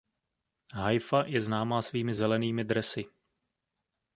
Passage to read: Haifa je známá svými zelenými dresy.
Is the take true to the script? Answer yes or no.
yes